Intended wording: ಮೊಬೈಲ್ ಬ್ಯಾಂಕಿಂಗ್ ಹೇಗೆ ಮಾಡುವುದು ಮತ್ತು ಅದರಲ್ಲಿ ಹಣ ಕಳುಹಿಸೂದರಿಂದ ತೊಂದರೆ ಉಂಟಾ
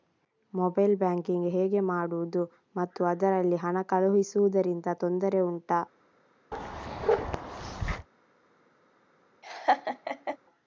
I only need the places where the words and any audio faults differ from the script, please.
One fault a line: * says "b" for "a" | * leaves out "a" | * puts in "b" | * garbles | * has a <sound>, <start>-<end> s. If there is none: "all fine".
* has a bark, 6.5-8.1 s
* has a laugh, 9.4-10.4 s